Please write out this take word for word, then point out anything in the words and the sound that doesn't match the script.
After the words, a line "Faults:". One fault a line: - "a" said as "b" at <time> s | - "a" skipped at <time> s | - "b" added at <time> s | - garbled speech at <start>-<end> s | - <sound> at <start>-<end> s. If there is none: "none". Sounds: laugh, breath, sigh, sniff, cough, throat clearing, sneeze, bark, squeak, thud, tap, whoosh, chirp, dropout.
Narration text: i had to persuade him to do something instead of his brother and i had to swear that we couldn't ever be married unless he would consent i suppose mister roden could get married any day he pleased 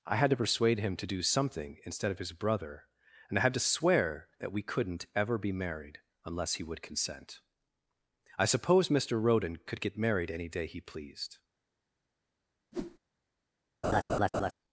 i had to persuade him to do something instead of his brother and i had to swear that we couldn't ever be married unless he would consent i suppose mister roden could get married any day he pleased
Faults:
- whoosh at 12.7-13.0 s
- laugh at 13.8-14.5 s